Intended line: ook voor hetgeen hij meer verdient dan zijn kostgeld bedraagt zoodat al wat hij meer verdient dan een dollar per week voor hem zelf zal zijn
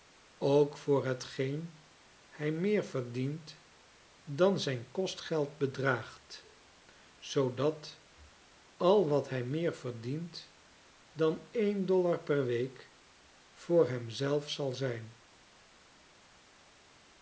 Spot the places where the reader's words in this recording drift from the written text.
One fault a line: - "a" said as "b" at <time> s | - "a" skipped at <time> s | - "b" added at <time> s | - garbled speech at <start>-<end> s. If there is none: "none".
none